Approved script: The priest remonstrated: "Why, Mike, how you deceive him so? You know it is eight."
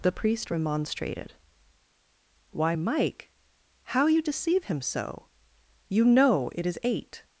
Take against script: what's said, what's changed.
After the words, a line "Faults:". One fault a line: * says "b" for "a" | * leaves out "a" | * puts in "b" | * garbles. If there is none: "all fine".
The priest remonstrated: "Why, Mike, how you deceive him so? You know it is eight."
Faults:
all fine